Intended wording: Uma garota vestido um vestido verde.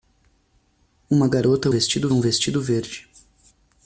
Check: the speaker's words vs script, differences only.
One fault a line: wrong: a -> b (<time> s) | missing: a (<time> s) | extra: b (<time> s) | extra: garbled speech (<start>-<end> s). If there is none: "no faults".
no faults